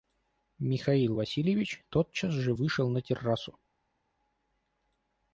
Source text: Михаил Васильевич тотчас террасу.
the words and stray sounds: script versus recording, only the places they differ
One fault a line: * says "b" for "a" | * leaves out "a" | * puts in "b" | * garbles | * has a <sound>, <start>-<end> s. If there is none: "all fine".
* puts in "же вышел на"